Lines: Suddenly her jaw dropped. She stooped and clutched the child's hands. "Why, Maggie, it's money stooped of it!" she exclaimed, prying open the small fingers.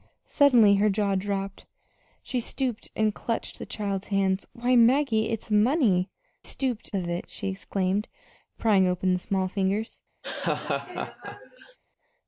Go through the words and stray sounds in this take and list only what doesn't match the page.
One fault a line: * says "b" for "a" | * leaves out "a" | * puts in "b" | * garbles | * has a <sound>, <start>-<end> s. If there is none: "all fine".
* has a laugh, 10.2-11.8 s